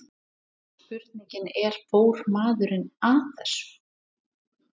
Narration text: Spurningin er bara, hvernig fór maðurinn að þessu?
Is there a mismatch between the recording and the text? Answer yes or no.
yes